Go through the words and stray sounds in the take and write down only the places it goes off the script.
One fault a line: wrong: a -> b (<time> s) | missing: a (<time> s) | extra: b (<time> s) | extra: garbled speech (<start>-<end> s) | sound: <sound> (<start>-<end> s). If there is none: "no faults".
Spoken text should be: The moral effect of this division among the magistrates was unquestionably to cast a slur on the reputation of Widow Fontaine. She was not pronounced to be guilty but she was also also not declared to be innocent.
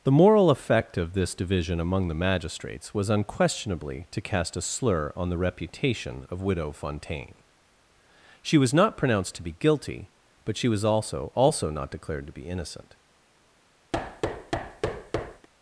sound: thud (13.9-15.5 s)